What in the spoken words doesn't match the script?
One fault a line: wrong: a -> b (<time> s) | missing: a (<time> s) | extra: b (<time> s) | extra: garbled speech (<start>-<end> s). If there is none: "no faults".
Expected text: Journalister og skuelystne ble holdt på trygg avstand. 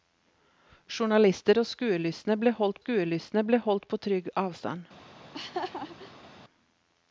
extra: skuelystne ble holdt (2.8 s)